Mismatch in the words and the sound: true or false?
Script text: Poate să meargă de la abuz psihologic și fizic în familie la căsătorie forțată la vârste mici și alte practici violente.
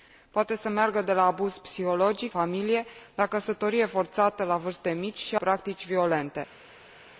true